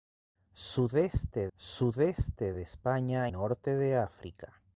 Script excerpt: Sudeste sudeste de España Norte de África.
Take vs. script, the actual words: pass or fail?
pass